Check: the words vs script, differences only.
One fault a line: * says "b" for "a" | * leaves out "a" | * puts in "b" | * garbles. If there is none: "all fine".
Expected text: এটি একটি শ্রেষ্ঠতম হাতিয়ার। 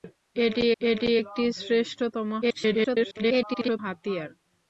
* puts in "এটি"
* garbles